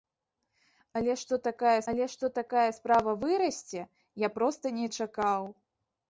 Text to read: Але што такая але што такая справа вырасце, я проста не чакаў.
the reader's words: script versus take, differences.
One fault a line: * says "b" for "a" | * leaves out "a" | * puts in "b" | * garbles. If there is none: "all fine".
all fine